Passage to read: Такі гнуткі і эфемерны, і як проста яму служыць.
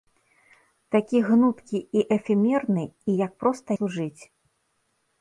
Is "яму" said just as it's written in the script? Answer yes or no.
no